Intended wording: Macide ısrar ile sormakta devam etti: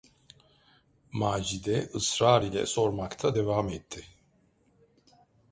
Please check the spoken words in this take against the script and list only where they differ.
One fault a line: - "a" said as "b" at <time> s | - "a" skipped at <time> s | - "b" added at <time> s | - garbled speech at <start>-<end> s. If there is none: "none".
none